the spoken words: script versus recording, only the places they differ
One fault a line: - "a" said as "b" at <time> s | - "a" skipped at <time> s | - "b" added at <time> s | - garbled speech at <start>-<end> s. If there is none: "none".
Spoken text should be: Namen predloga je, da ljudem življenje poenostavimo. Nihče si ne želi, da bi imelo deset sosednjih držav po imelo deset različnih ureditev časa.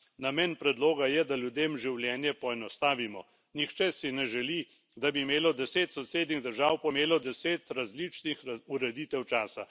none